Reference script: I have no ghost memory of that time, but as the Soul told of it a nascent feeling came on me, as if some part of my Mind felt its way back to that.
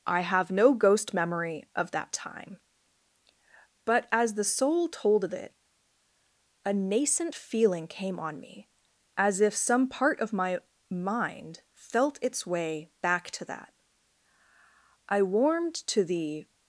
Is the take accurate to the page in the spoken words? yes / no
no